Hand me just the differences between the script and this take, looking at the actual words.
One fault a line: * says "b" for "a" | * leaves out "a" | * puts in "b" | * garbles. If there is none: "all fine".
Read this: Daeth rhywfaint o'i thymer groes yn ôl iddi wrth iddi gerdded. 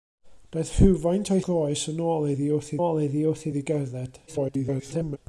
* leaves out "thymer"
* puts in "ôl iddi wrth"
* garbles